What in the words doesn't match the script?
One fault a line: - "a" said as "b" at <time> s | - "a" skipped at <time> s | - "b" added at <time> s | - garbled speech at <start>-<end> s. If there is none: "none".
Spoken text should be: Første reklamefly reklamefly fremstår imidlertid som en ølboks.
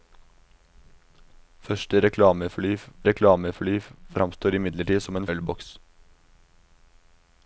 none